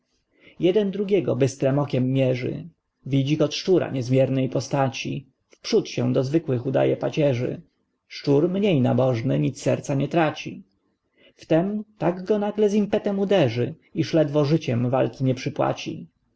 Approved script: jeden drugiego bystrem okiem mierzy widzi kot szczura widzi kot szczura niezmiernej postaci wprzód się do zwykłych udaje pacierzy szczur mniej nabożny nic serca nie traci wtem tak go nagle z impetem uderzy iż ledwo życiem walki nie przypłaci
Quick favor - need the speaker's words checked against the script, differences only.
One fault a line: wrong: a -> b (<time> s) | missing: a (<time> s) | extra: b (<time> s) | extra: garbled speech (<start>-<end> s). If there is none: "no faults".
missing: widzi kot szczura (3.9 s)